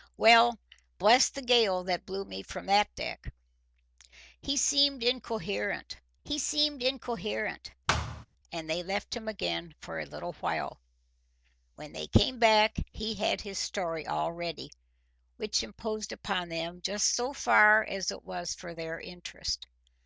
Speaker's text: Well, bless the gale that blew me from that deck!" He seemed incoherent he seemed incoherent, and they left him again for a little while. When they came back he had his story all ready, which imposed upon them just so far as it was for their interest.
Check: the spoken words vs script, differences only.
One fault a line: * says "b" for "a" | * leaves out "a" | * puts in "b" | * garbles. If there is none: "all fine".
all fine